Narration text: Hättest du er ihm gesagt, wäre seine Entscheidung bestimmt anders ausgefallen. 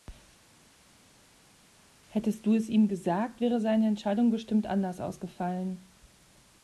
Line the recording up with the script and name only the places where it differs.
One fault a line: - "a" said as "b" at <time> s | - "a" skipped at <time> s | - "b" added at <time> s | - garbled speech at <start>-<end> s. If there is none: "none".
- "er" said as "es" at 2.6 s